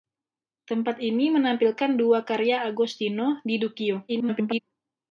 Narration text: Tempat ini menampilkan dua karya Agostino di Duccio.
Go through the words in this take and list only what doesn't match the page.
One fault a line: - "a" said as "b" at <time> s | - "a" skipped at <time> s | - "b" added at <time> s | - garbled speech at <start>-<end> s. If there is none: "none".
- garbled speech at 4.1-4.6 s